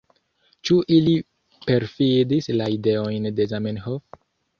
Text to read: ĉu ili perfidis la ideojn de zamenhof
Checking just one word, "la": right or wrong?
right